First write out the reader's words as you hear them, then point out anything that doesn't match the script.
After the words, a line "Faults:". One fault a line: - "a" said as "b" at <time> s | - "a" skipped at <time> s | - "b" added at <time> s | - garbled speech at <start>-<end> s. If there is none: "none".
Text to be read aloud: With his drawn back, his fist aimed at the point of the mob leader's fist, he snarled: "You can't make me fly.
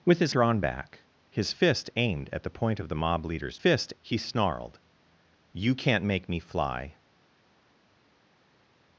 With his drawn back, his fist aimed at the point of the mob leader's fist, he snarled: "You can't make me fly.
Faults:
none